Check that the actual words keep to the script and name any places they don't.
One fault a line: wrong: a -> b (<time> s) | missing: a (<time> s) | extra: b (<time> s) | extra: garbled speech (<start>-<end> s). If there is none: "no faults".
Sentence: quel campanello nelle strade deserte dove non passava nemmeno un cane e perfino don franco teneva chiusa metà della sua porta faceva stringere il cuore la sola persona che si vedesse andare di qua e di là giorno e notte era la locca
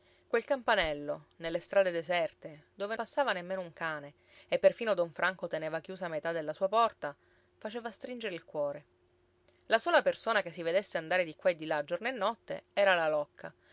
missing: non (3.0 s)